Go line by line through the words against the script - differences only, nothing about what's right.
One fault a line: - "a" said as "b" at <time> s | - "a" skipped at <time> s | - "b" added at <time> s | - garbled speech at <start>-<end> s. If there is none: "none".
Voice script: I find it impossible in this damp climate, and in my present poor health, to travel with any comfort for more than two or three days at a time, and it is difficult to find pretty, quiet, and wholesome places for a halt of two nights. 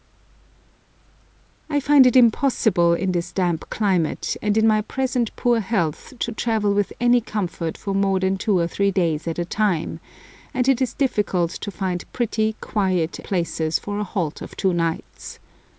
- "and wholesome" skipped at 13.2 s